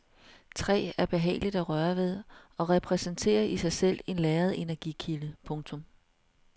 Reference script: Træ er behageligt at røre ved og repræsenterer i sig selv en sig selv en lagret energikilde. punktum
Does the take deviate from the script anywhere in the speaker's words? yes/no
yes